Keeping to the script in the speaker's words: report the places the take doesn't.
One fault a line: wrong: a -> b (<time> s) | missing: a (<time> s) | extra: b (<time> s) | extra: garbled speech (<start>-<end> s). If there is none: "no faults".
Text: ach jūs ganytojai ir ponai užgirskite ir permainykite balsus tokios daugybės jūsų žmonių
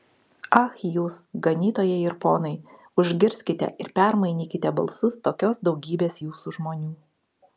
no faults